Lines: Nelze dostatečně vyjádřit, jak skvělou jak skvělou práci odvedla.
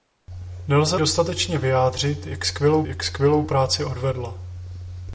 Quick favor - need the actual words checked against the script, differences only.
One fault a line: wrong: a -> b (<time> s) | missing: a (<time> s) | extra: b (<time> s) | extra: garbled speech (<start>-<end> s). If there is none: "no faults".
no faults